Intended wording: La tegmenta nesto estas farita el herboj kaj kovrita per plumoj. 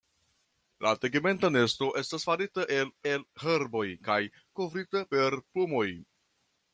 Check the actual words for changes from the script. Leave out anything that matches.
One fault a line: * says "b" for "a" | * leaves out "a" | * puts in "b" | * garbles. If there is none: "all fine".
* puts in "el"